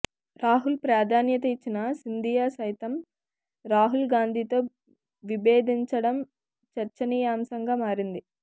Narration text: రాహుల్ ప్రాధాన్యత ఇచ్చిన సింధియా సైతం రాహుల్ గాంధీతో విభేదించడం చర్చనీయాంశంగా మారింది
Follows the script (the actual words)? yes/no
yes